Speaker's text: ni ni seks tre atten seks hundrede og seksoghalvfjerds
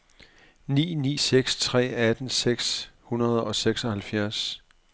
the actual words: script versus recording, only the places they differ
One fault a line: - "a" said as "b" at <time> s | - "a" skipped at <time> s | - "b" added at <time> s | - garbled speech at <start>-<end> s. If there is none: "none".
none